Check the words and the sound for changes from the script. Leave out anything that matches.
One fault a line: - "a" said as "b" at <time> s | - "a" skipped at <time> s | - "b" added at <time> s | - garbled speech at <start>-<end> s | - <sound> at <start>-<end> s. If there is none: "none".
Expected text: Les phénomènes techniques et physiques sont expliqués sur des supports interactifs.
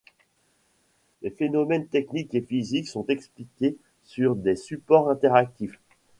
none